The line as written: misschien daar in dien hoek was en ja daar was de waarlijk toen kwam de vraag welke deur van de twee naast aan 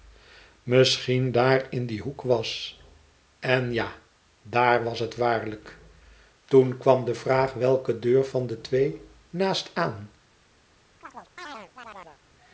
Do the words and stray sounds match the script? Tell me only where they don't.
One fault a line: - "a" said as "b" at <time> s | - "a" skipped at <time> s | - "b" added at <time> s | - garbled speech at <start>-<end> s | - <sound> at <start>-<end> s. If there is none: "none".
- "de" said as "het" at 5.0 s
- chirp at 11.0-12.2 s